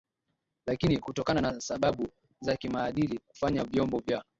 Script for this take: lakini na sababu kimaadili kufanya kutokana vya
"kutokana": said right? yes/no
no